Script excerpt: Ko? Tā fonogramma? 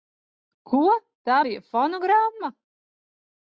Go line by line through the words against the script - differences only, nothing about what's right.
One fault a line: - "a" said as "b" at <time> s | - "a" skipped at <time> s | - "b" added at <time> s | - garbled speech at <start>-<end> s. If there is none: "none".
- "bija" added at 1.4 s